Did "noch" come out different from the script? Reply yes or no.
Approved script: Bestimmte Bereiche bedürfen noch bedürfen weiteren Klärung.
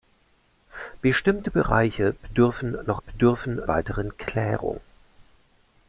no